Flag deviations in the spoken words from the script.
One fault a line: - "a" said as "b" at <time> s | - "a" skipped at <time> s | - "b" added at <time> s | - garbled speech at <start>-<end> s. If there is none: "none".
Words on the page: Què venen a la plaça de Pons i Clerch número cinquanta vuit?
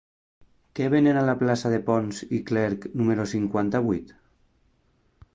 none